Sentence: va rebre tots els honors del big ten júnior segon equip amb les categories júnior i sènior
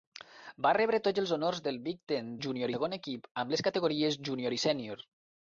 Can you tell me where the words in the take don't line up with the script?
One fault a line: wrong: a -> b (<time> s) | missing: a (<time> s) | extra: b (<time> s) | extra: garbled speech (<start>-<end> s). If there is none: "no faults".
no faults